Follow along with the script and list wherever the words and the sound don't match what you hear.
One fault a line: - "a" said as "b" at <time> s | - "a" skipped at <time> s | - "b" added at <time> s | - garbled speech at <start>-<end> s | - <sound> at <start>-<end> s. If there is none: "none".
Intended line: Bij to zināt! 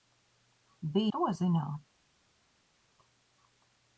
none